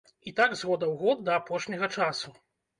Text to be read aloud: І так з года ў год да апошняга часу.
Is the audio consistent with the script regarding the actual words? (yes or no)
yes